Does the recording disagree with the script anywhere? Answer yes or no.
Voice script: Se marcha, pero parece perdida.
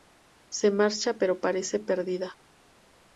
no